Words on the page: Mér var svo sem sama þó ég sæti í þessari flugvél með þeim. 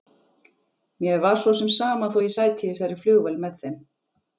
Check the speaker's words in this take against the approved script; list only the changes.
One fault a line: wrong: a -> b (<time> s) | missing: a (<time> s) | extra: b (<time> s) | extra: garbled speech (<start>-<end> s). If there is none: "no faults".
no faults